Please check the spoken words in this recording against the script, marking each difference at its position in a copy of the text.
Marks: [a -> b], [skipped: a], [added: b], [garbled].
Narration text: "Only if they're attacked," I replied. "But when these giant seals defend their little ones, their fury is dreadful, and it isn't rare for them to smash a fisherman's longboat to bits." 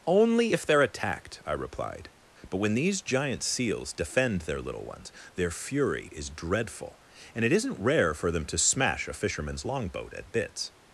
"Only if they're attacked," I replied. "But when these giant seals defend their little ones, their fury is dreadful, and it isn't rare for them to smash a fisherman's longboat [to -> at] bits."